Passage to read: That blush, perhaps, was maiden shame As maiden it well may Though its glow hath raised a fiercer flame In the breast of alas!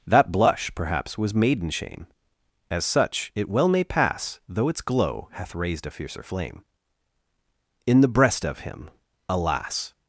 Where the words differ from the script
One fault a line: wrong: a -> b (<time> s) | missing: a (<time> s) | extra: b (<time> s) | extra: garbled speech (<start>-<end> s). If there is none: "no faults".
wrong: maiden -> such (2.9 s)
extra: pass (3.8 s)
extra: him (8.6 s)